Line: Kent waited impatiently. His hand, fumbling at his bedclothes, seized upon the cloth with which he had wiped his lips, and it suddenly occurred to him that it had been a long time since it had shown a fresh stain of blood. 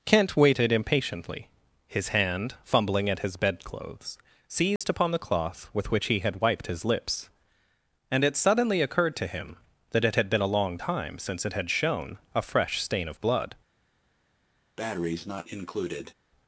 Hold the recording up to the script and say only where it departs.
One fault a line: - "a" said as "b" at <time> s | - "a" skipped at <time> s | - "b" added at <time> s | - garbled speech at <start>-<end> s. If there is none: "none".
none